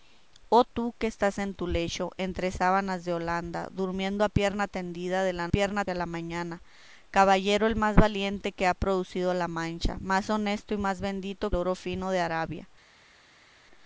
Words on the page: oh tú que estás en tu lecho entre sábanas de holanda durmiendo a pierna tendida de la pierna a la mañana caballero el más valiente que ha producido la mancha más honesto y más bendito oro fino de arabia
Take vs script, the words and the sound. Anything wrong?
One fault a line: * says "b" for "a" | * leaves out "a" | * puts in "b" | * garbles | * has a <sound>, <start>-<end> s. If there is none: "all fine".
all fine